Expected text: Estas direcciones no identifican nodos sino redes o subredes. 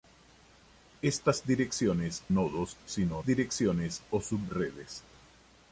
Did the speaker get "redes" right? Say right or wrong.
wrong